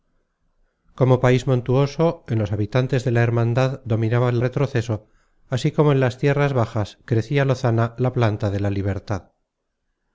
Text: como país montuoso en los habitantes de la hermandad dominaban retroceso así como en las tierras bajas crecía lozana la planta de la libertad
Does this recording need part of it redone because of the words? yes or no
no